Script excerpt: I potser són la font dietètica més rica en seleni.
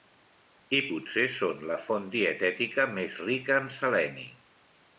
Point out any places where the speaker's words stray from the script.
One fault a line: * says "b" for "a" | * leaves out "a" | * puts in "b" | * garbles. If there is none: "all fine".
all fine